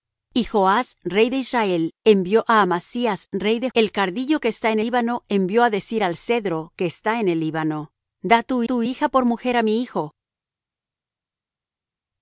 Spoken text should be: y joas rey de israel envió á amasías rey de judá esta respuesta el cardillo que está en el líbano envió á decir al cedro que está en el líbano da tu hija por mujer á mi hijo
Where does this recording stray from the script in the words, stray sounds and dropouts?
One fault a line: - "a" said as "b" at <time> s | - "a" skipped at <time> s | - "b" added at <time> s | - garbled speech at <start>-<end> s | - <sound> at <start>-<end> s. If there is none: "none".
- "judá esta respuesta" skipped at 3.7 s
- "el" skipped at 4.8 s
- "tu" added at 8.6 s